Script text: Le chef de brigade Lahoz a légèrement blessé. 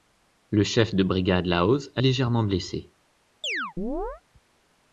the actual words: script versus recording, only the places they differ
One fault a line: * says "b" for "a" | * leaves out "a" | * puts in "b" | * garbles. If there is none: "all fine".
all fine